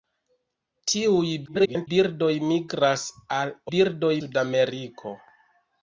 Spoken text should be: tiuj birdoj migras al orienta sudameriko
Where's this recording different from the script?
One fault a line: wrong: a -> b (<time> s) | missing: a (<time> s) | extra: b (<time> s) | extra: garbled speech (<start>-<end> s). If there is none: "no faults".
extra: garbled speech (1.5-1.9 s)
wrong: orienta -> birdoj (3.7 s)